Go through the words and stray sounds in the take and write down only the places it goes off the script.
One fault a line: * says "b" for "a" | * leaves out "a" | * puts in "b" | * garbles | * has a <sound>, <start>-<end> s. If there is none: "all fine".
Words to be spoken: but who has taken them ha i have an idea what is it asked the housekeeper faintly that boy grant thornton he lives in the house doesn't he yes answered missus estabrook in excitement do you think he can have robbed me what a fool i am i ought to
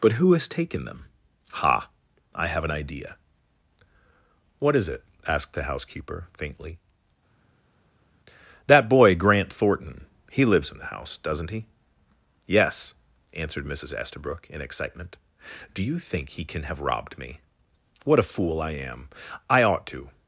all fine